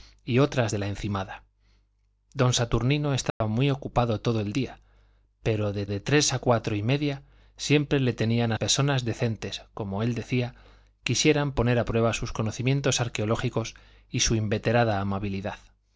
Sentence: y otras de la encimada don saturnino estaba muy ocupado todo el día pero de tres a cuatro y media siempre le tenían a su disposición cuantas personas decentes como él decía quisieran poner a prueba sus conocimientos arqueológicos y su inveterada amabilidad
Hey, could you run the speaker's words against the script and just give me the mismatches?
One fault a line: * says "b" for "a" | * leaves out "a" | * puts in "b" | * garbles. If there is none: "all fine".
* puts in "de"
* leaves out "su disposición cuantas"